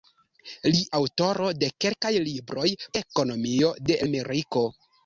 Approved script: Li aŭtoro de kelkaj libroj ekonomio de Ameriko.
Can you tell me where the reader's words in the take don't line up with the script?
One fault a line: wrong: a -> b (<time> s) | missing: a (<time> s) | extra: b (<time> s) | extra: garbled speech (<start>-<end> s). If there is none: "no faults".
no faults